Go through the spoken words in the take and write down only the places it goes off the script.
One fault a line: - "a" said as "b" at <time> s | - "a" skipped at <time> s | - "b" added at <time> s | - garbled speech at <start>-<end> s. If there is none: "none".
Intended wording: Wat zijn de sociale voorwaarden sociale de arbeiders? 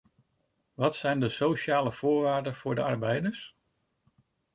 - "sociale" said as "voor" at 2.5 s